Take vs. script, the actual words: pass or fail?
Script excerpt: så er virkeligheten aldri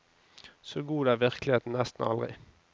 fail